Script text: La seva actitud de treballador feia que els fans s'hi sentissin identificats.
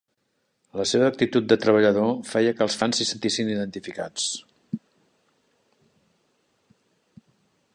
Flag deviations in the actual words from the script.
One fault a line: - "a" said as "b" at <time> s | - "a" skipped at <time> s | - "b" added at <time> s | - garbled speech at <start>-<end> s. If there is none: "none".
none